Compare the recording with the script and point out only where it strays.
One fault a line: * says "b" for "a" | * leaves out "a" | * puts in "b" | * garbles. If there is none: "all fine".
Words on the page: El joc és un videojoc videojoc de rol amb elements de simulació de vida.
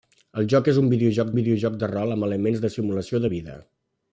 all fine